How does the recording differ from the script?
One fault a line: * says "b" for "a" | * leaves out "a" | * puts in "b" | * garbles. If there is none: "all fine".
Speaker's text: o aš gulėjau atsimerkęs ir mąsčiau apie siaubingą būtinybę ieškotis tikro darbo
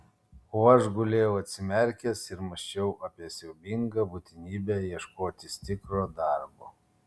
all fine